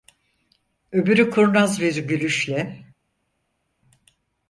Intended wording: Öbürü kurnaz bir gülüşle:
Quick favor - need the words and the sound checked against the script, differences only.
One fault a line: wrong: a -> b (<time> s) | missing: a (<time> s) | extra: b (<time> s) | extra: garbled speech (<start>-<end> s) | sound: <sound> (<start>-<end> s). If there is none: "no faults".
no faults